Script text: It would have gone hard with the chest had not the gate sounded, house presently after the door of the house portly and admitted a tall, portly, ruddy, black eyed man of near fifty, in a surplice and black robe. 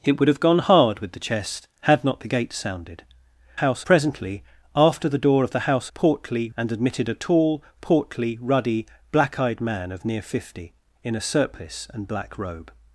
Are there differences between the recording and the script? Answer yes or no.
no